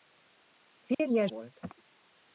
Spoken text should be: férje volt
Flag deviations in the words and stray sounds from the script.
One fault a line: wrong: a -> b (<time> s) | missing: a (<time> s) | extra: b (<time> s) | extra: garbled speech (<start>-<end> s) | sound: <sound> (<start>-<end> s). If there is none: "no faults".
sound: dropout (0.9-1.0 s)